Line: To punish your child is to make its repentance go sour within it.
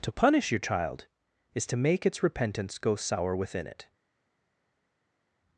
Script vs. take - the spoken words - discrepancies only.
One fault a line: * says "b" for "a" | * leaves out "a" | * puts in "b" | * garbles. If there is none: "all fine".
all fine